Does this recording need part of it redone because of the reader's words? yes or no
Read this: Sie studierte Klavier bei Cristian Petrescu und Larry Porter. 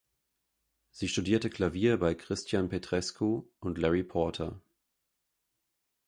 no